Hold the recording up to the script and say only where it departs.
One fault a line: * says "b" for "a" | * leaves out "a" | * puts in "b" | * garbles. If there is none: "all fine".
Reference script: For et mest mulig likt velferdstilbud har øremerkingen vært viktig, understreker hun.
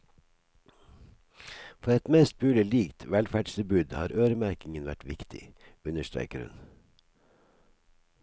all fine